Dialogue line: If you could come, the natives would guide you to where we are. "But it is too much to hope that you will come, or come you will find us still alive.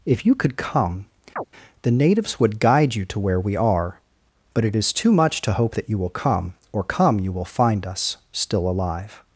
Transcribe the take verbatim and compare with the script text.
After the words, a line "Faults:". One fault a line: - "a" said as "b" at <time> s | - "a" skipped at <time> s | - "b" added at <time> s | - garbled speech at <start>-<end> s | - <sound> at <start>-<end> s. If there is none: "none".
If you could come, the natives would guide you to where we are. "But it is too much to hope that you will come, or come you will find us still alive.
Faults:
- chirp at 1.4-1.4 s